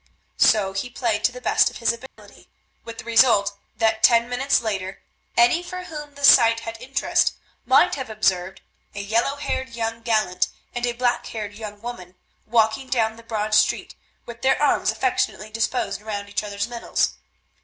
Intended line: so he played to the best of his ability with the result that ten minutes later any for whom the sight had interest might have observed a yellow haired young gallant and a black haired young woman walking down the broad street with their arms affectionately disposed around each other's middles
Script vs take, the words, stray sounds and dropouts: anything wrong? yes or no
yes